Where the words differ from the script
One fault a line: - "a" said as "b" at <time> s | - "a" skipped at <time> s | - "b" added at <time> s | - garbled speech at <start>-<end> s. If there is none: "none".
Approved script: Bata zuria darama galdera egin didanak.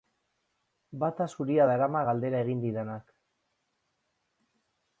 none